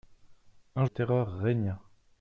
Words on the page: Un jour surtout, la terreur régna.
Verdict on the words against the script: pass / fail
fail